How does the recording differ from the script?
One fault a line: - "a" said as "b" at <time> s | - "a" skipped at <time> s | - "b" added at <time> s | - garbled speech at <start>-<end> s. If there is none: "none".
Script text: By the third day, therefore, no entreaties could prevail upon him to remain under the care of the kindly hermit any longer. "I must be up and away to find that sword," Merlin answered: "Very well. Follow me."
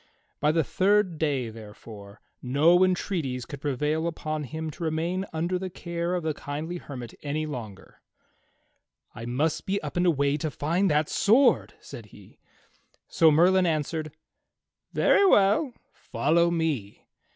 - "said he So" added at 11.8 s